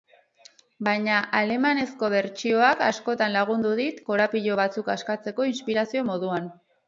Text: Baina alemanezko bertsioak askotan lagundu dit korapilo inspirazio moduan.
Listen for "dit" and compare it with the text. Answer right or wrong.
right